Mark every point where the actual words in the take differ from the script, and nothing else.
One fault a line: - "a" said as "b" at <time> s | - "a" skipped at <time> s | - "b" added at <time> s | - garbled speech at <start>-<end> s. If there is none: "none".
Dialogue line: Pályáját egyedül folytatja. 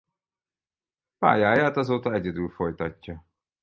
- "azóta" added at 1.8 s